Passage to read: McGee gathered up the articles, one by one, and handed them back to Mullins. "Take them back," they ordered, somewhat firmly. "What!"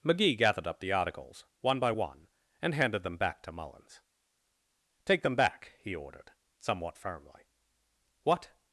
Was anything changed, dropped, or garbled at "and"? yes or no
no